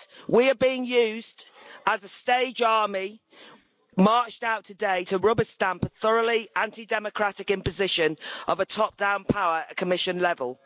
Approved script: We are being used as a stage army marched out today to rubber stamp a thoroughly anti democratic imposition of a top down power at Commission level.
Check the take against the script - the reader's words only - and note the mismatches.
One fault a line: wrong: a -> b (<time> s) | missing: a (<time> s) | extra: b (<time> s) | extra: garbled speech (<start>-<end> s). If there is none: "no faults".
no faults